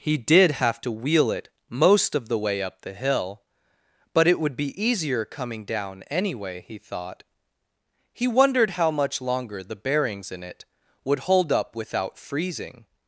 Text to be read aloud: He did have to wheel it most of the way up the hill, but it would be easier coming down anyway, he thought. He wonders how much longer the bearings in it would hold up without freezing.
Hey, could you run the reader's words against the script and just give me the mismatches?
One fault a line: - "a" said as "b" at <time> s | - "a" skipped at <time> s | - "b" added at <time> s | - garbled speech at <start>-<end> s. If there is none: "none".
- "wonders" said as "wondered" at 8.3 s